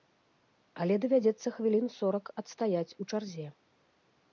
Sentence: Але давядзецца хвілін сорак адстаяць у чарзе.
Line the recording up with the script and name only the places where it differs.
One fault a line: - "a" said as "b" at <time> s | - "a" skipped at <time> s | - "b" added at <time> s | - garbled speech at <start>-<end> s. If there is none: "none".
none